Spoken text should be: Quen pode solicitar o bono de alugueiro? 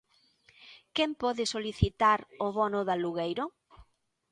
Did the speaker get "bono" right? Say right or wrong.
right